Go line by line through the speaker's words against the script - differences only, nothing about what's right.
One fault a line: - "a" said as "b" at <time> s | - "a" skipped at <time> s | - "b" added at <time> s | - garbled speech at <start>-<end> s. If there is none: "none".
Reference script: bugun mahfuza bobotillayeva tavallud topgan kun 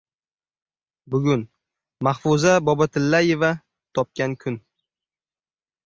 - "tavallud" skipped at 3.5 s